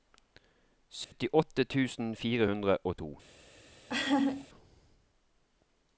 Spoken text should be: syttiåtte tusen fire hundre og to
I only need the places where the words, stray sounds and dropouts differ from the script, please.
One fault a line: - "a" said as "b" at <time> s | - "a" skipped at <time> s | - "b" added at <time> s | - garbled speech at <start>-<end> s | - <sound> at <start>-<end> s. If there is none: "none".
- dropout at 1.0-1.1 s
- laugh at 3.9-4.5 s